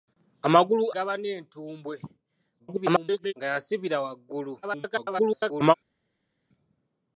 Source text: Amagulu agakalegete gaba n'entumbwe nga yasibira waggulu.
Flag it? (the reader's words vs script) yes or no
yes